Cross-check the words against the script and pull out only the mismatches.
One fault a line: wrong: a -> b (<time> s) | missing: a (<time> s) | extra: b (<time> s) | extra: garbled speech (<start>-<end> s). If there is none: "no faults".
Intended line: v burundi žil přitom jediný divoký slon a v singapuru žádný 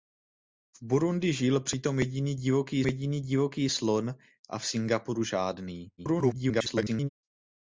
extra: jediný divoký (2.9 s)
extra: garbled speech (6.0-7.1 s)